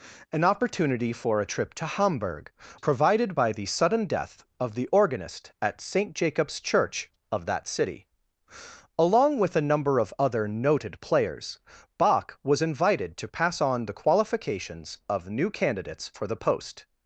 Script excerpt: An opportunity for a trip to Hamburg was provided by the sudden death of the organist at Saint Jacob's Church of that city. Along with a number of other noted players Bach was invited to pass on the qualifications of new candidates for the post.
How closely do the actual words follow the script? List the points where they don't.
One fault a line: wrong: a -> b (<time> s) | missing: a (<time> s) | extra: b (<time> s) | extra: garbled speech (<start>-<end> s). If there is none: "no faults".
missing: was (2.5 s)